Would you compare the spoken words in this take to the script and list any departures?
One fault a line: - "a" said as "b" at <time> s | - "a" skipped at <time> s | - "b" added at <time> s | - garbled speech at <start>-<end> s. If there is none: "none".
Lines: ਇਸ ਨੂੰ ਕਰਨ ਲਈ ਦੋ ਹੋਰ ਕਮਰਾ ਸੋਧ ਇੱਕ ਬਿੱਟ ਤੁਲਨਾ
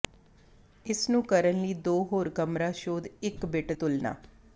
none